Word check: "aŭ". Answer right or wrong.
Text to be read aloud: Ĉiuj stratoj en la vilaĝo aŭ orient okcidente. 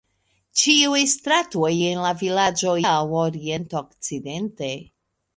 right